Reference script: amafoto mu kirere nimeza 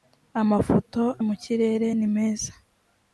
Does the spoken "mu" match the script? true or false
true